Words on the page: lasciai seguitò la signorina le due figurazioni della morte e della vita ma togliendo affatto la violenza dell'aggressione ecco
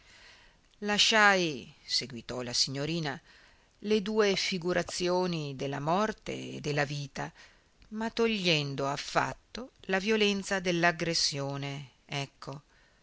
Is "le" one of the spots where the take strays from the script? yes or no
no